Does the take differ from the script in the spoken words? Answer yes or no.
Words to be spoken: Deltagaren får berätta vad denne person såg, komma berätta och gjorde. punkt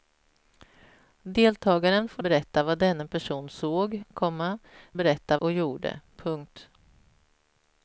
no